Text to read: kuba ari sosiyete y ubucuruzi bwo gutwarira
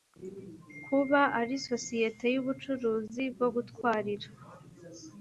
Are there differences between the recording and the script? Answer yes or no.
no